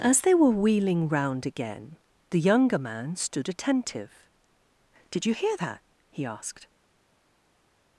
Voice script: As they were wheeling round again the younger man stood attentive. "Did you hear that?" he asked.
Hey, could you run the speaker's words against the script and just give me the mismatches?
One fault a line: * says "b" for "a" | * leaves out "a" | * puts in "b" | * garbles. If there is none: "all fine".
all fine